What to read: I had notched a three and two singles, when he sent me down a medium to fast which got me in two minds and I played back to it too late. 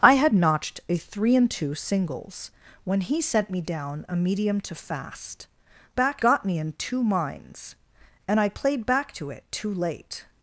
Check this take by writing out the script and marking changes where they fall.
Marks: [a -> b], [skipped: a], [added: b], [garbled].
I had notched a three and two singles, when he sent me down a medium to fast [which -> back] got me in two minds and I played back to it too late.